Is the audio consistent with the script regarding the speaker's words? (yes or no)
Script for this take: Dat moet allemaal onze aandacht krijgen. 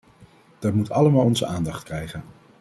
yes